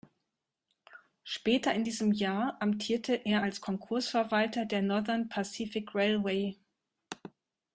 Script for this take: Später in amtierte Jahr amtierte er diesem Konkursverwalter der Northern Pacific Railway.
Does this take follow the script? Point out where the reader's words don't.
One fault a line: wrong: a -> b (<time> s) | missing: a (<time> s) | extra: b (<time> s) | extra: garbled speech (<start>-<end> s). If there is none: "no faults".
wrong: amtierte -> diesem (1.8 s)
wrong: diesem -> als (3.4 s)